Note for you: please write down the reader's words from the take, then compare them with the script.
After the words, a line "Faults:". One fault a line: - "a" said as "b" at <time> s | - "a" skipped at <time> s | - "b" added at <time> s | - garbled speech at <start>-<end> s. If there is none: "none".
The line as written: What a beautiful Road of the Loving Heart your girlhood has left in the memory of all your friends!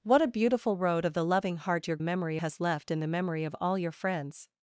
What a beautiful Road of the Loving Heart your memory has left in the memory of all your friends!
Faults:
- "girlhood" said as "memory" at 2.0 s